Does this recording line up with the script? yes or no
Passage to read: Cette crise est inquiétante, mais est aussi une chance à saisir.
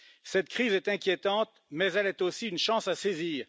no